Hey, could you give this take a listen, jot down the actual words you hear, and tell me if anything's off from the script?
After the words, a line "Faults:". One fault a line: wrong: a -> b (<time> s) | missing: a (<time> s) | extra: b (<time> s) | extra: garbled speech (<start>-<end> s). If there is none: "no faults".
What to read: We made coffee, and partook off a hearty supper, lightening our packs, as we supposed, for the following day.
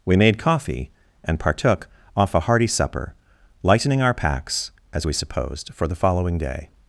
We made coffee, and partook off a hearty supper, lightening our packs, as we supposed, for the following day.
Faults:
no faults